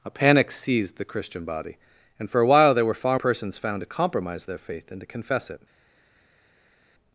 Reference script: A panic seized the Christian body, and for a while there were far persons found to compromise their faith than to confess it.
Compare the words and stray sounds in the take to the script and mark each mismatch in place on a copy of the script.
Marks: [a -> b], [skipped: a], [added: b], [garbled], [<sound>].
A panic seized the Christian body, and for a while there were far persons found to compromise their faith than to confess it.